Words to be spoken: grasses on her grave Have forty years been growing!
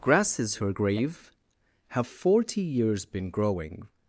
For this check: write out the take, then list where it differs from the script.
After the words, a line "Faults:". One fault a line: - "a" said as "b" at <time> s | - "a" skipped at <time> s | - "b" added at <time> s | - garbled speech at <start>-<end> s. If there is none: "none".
grasses her grave Have forty years been growing!
Faults:
- "on" skipped at 0.6 s